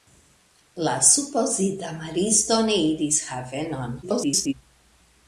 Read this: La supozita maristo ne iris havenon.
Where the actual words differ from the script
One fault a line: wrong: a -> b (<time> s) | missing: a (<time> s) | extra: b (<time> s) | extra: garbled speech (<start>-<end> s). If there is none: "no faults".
extra: garbled speech (4.0-4.5 s)